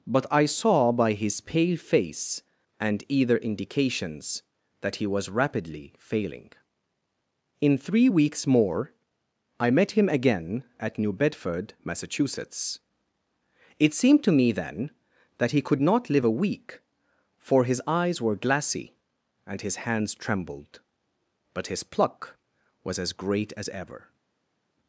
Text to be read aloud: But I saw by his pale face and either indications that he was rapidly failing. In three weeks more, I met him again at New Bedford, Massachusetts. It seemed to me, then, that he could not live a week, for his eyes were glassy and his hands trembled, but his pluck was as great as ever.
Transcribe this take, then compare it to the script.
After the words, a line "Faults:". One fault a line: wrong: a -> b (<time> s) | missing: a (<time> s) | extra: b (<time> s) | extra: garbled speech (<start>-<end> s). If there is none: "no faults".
But I saw by his pale face and either indications that he was rapidly failing. In three weeks more, I met him again at New Bedford, Massachusetts. It seemed to me, then, that he could not live a week, for his eyes were glassy and his hands trembled, but his pluck was as great as ever.
Faults:
no faults